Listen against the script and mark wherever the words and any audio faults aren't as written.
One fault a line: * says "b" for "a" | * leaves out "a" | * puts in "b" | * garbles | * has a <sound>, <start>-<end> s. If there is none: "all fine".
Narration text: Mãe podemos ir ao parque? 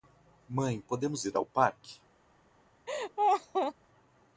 * has a laugh, 2.9-3.7 s